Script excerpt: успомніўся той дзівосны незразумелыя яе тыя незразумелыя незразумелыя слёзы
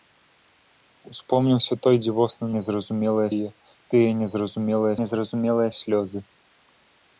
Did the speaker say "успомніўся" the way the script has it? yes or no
yes